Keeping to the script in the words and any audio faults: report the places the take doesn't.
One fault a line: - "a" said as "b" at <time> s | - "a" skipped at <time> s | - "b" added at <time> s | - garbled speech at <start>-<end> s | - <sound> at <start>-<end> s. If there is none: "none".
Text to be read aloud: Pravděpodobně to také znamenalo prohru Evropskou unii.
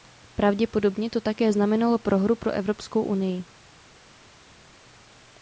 - "pro" added at 2.4 s